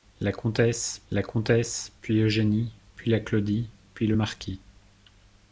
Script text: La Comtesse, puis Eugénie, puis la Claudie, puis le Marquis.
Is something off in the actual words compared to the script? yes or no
yes